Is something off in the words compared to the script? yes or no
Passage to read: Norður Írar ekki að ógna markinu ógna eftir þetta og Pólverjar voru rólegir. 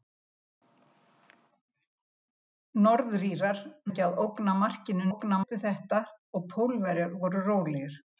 no